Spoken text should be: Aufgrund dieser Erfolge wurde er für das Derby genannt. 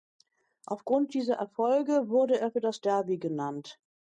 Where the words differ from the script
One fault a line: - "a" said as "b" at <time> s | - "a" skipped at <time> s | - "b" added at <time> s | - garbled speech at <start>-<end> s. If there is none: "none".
none